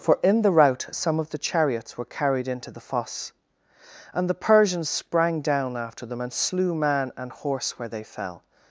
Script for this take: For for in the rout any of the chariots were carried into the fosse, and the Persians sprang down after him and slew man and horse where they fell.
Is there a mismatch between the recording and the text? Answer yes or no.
yes